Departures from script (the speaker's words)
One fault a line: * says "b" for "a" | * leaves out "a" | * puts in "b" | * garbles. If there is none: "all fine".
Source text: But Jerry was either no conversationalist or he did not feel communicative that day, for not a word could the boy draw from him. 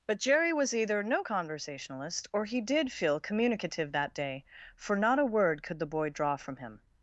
* leaves out "not"